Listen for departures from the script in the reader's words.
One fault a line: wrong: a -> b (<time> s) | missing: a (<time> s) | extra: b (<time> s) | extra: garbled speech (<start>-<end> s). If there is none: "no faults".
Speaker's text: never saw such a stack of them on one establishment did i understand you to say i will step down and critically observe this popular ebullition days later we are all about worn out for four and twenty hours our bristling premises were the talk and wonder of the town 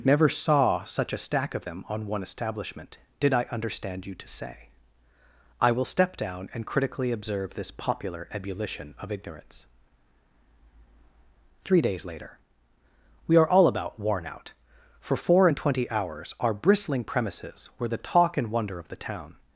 extra: of ignorance three (9.0 s)